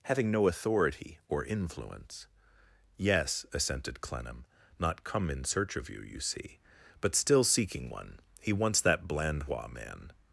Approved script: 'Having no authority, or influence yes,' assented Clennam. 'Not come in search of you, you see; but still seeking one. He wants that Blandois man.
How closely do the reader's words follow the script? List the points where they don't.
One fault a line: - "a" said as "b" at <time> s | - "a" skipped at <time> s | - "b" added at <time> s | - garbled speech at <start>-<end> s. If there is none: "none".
none